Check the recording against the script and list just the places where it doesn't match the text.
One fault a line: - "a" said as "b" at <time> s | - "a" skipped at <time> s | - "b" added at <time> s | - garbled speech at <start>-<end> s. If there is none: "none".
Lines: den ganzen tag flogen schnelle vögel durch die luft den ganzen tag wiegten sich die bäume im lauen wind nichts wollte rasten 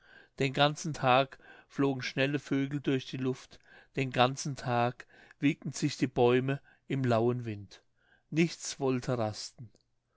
none